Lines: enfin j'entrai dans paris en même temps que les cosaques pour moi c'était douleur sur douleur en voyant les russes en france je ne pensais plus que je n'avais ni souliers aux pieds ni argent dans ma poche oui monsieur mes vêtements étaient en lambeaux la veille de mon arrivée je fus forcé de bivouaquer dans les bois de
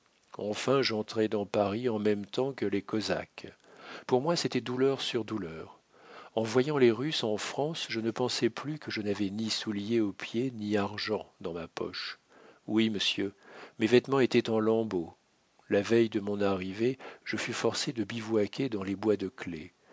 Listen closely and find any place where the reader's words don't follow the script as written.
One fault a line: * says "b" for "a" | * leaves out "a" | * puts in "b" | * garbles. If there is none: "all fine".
all fine